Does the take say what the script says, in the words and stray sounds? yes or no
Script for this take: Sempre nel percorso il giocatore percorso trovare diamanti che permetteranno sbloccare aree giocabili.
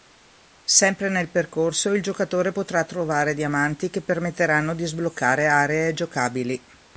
no